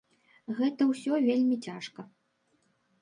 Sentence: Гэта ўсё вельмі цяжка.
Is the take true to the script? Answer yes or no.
yes